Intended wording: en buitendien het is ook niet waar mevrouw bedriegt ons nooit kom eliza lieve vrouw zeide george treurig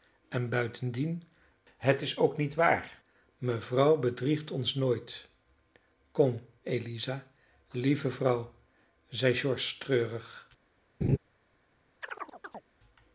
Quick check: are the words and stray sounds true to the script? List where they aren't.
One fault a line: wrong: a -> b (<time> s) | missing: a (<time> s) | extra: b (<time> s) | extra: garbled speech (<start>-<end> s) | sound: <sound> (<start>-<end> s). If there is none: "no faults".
sound: laugh (11.0-11.2 s)
sound: chirp (12.0-12.6 s)